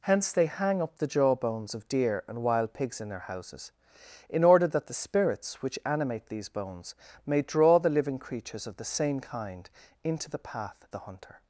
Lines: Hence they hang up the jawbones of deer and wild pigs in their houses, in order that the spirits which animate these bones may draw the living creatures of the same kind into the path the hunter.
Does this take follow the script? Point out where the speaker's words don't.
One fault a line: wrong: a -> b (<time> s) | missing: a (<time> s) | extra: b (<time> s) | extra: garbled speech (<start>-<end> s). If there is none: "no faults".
no faults